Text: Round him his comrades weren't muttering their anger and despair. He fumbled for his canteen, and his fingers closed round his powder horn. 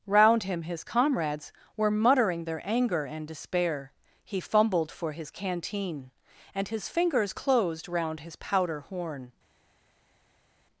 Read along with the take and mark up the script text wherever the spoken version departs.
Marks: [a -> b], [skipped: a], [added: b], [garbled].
Round him his comrades [weren't -> were] muttering their anger and despair. He fumbled for his canteen, and his fingers closed round his powder horn.